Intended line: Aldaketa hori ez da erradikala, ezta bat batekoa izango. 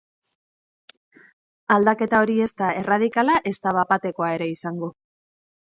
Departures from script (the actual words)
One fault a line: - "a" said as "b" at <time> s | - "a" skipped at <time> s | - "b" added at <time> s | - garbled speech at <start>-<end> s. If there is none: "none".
- "ere" added at 4.4 s